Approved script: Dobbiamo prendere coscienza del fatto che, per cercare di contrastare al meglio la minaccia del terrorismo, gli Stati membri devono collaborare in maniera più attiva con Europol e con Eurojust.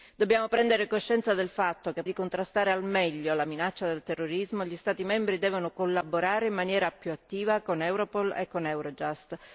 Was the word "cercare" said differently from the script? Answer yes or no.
yes